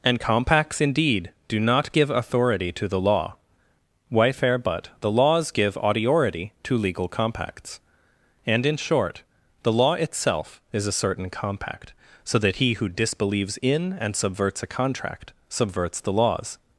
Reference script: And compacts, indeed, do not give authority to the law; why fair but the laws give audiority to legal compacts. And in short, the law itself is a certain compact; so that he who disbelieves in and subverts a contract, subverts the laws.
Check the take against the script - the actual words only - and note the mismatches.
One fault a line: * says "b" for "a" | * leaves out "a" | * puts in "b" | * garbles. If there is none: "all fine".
all fine